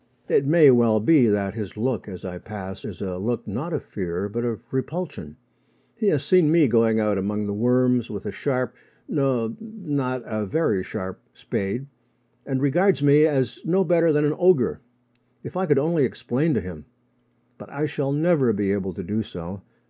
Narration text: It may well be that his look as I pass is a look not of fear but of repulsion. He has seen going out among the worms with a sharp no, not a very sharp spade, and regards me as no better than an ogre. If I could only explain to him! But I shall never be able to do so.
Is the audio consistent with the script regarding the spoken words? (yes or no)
no